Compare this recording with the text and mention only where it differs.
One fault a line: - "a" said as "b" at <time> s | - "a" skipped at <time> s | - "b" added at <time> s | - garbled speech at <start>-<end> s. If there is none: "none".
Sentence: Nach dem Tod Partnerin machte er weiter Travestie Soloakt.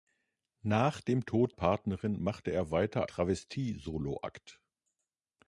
none